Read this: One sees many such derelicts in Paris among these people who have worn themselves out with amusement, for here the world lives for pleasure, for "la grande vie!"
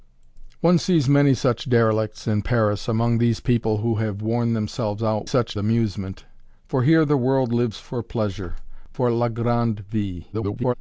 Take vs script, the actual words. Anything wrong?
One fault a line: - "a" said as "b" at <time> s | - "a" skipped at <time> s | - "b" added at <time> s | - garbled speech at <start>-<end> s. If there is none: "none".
- "with" said as "such" at 5.2 s
- garbled speech at 10.3-10.7 s